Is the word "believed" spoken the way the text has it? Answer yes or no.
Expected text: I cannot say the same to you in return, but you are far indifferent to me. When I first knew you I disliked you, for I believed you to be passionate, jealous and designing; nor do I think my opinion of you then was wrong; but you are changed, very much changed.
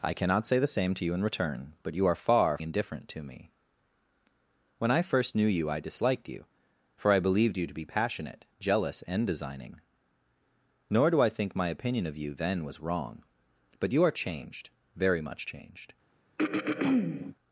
yes